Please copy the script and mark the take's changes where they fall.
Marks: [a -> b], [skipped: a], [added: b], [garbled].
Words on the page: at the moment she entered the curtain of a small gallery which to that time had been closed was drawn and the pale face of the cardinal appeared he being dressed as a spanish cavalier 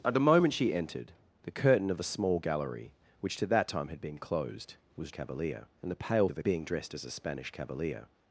at the moment she entered the curtain of a small gallery which to that time had been closed was [drawn -> cavalier] and the pale [skipped: face] of the [skipped: cardinal appeared he] being dressed as a spanish cavalier